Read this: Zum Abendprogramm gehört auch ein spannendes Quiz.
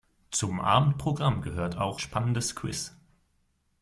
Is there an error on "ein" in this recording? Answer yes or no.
yes